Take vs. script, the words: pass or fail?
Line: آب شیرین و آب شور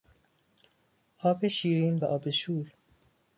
pass